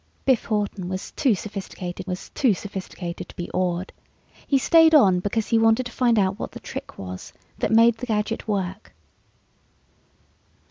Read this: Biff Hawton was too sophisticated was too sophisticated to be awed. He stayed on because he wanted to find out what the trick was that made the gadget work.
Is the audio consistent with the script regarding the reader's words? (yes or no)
yes